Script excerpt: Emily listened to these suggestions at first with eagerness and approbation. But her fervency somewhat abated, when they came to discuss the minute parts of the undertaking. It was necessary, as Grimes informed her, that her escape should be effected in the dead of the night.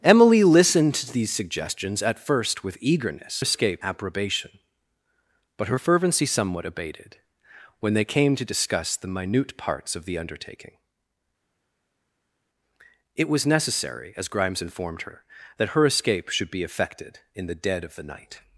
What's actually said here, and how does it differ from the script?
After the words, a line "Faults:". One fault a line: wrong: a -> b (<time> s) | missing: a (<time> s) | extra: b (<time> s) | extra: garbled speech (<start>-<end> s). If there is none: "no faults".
Emily listened to these suggestions at first with eagerness escape approbation. But her fervency somewhat abated, when they came to discuss the minute parts of the undertaking. It was necessary, as Grimes informed her, that her escape should be effected in the dead of the night.
Faults:
wrong: and -> escape (3.4 s)